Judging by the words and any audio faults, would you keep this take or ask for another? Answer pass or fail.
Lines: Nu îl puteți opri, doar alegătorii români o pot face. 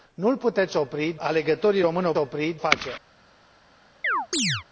fail